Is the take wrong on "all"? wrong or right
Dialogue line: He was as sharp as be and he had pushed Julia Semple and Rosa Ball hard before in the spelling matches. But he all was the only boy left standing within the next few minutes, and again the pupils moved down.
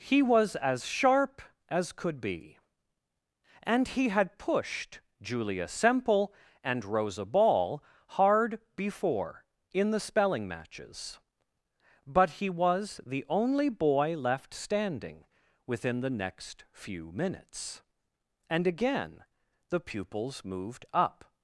wrong